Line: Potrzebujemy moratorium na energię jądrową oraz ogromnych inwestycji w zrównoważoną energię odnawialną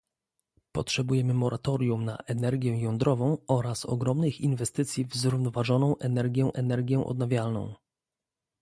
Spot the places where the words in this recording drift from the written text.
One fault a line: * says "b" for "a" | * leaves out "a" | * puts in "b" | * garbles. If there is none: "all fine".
* puts in "energię"